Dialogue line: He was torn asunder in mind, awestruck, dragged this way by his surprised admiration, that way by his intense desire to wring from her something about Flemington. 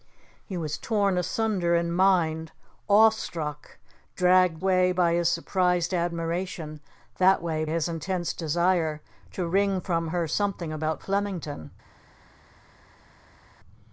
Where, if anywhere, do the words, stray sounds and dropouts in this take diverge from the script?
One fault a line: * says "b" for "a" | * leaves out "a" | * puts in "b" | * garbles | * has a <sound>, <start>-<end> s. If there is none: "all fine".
* leaves out "this"
* leaves out "by"